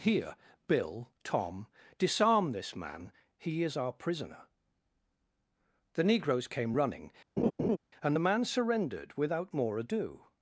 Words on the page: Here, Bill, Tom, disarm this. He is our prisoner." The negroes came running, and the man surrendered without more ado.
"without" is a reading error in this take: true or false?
false